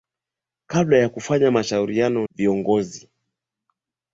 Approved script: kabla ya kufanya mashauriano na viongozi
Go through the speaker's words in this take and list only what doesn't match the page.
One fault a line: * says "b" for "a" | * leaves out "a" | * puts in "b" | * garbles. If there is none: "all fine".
* leaves out "na"